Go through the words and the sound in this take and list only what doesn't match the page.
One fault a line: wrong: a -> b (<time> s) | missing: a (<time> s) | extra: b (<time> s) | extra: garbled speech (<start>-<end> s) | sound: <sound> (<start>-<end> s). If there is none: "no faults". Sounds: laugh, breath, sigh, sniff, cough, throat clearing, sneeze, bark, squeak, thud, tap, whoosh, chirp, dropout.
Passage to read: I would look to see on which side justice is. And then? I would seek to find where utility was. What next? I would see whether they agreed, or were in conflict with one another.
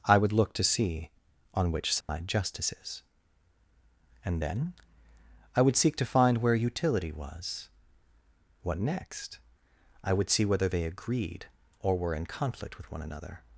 sound: dropout (2.0-2.1 s)